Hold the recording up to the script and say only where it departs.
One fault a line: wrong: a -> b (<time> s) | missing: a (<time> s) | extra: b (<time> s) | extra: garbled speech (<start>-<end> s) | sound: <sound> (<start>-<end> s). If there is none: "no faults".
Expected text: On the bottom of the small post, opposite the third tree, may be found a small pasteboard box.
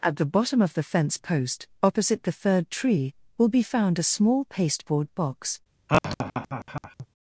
wrong: On -> At (0.0 s)
wrong: small -> fence (0.8 s)
wrong: may -> will (3.4 s)
sound: laugh (5.9-7.1 s)